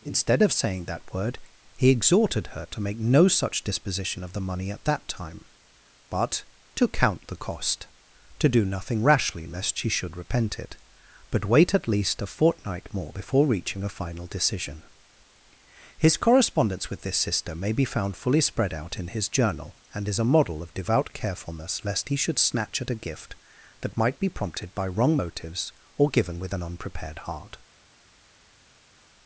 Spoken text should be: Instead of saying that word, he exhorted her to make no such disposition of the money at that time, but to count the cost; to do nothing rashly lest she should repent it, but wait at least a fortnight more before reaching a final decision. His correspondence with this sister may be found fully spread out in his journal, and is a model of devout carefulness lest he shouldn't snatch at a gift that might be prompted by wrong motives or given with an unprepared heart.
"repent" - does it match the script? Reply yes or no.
yes